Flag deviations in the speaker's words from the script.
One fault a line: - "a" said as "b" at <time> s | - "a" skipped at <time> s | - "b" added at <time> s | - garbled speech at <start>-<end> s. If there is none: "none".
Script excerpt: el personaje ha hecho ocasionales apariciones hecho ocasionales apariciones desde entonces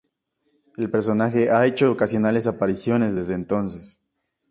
- "hecho ocasionales apariciones" skipped at 3.2 s